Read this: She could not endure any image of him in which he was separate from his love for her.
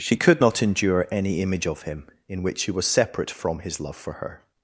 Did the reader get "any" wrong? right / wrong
right